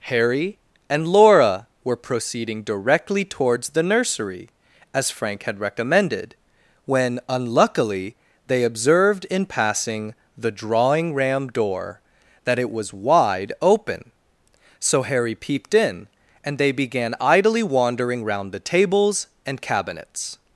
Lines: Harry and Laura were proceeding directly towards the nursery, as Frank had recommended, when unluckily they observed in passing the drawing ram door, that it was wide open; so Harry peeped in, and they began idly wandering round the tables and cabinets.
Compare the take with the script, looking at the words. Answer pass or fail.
pass